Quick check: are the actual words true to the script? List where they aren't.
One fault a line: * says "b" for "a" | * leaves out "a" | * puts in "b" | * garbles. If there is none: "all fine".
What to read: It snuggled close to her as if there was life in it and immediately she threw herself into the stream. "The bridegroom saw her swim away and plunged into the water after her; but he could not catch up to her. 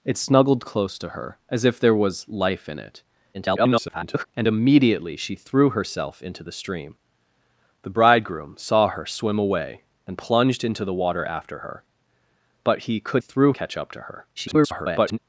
* garbles
* says "threw" for "not"
* garbles